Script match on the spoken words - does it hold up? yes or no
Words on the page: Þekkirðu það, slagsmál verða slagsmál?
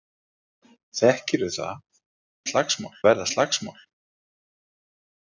yes